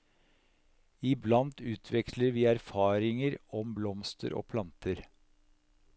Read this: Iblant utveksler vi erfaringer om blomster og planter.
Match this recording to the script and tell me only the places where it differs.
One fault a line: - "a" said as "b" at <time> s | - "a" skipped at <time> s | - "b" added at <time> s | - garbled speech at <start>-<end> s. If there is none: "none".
none